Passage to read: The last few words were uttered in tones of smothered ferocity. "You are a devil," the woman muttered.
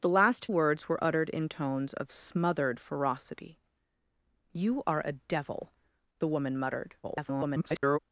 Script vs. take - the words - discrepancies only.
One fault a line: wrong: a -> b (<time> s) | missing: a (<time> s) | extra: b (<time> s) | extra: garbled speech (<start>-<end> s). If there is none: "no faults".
missing: few (0.5 s)
extra: garbled speech (7.0-8.0 s)